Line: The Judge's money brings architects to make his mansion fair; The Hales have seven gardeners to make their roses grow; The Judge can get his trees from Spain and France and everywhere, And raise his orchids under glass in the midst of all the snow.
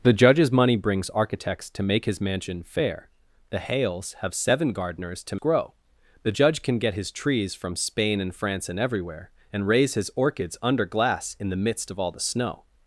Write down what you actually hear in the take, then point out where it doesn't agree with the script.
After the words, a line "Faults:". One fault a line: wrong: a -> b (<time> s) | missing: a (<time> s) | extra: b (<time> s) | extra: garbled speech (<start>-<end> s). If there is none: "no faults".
The Judge's money brings architects to make his mansion fair; The Hales have seven gardeners to grow; The Judge can get his trees from Spain and France and everywhere, And raise his orchids under glass in the midst of all the snow.
Faults:
missing: make their roses (5.3 s)